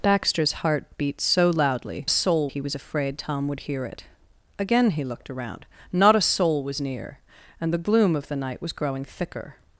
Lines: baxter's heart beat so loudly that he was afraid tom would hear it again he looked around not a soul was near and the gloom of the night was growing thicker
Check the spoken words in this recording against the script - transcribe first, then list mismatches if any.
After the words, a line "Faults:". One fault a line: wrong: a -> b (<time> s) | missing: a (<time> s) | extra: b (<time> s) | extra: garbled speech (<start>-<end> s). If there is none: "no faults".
baxter's heart beat so loudly soul he was afraid tom would hear it again he looked around not a soul was near and the gloom of the night was growing thicker
Faults:
wrong: that -> soul (2.1 s)